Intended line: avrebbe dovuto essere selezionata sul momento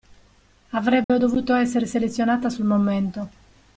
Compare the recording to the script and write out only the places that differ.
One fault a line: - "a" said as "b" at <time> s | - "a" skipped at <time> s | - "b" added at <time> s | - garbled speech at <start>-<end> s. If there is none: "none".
none